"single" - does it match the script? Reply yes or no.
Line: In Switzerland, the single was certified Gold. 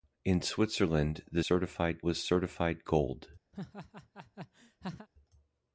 no